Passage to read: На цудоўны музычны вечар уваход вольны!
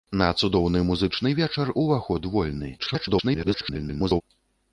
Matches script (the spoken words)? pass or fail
fail